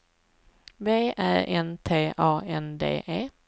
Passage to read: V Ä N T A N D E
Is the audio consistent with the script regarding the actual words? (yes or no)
yes